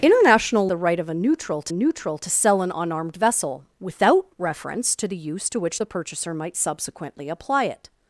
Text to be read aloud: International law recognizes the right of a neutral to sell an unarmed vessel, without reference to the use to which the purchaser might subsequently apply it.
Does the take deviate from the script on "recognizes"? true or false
true